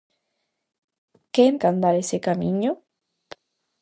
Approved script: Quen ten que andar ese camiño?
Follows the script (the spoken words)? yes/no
no